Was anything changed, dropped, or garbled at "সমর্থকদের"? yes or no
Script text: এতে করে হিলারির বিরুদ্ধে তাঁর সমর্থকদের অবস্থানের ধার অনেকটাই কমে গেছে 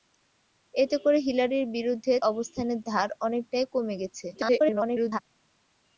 yes